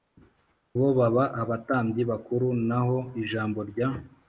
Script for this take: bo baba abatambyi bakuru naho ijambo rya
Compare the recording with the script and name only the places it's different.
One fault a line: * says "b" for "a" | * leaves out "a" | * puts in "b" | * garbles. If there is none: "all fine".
all fine